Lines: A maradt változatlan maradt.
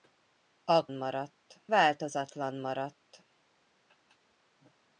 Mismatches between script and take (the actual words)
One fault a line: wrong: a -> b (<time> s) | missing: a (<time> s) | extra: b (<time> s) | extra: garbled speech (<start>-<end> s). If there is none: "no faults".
no faults